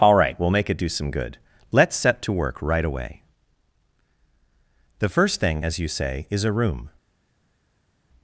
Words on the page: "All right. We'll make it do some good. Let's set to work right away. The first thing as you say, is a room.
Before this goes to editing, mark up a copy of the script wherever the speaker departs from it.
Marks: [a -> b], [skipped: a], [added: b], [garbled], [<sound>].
"All right. We'll make it do some good. Let's set to work right away. The first thing as you say, is a room.